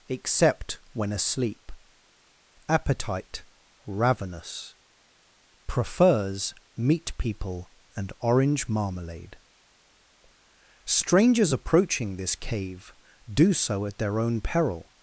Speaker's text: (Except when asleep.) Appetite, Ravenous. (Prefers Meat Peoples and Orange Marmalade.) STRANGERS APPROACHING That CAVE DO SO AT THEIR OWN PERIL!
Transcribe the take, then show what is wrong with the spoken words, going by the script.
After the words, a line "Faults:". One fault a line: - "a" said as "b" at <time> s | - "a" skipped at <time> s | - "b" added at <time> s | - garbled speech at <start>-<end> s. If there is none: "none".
(Except when asleep.) Appetite, Ravenous. (Prefers Meat People and Orange Marmalade.) STRANGERS APPROACHING THIS CAVE DO SO AT THEIR OWN PERIL!
Faults:
- "Peoples" said as "People" at 7.2 s
- "That" said as "THIS" at 12.2 s